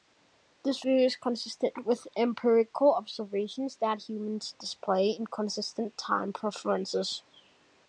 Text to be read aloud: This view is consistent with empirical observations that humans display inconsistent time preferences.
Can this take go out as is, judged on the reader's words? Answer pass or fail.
pass